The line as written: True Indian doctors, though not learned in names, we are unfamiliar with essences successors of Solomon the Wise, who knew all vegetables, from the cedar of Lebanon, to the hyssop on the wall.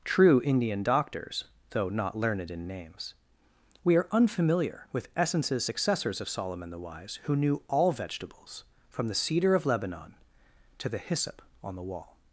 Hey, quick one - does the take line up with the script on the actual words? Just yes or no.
yes